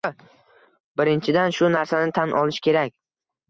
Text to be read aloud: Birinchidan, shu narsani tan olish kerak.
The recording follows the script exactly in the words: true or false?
true